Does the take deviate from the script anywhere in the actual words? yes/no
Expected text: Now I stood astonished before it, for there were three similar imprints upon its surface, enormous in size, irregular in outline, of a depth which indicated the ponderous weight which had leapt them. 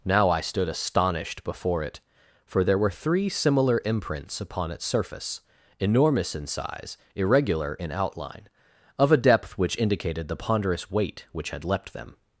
no